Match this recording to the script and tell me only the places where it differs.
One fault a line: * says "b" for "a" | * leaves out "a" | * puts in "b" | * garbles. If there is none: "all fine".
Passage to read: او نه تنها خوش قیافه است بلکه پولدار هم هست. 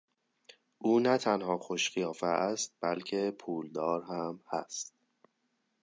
all fine